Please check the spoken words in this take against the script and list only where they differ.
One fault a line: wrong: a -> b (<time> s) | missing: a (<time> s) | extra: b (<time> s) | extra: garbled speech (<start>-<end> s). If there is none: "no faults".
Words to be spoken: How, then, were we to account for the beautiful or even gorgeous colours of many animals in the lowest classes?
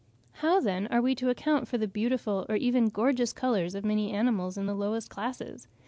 wrong: were -> are (0.9 s)